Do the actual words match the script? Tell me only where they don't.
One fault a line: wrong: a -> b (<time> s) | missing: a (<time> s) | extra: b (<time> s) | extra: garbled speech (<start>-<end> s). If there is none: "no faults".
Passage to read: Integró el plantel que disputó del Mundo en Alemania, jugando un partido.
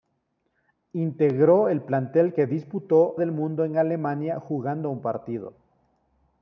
no faults